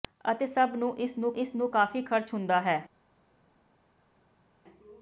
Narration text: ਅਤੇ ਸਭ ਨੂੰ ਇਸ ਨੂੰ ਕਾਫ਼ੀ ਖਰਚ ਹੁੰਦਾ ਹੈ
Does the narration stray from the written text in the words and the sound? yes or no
yes